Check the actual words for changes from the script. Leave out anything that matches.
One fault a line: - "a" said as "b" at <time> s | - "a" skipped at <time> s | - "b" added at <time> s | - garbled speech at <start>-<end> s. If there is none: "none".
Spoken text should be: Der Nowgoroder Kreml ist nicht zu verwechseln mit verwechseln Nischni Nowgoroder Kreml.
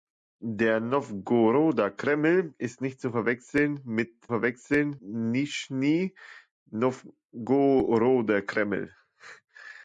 none